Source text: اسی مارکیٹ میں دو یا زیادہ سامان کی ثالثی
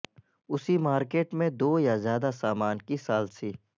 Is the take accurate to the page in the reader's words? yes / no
yes